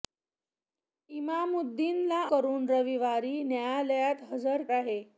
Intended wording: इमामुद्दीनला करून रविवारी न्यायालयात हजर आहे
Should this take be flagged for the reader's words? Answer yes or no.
no